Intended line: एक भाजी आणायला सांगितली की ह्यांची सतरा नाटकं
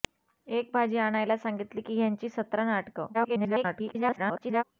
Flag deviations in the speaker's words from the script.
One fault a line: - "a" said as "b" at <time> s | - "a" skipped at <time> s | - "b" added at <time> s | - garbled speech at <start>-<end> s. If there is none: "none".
- garbled speech at 3.1-4.6 s